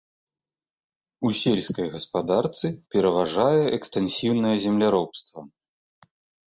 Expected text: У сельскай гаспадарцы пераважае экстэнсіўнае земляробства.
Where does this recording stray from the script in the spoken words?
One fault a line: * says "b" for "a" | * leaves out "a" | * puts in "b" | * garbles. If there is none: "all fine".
all fine